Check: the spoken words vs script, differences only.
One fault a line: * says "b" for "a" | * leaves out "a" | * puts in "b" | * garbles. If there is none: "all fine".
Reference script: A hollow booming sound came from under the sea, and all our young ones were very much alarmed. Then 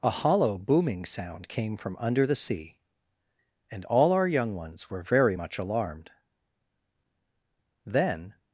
all fine